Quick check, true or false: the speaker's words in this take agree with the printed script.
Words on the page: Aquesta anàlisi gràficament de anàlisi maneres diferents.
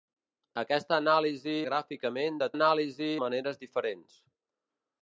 true